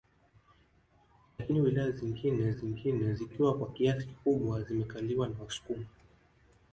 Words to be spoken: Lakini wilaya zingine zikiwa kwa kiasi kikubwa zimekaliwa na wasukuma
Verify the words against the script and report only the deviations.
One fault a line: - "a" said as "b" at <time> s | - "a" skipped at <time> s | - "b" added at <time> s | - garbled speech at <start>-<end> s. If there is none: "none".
- "zingine" added at 2.5 s